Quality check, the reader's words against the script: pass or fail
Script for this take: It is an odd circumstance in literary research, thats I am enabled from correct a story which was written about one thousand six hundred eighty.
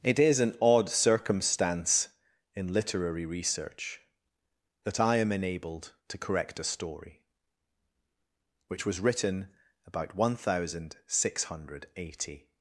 fail